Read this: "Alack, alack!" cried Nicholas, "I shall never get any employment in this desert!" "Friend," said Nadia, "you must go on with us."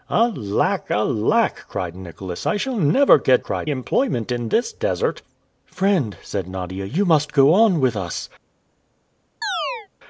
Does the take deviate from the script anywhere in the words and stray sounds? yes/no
yes